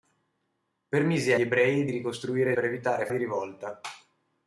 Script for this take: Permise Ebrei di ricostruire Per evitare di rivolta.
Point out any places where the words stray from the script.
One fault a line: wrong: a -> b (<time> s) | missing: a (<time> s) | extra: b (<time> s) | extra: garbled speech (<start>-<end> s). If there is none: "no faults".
no faults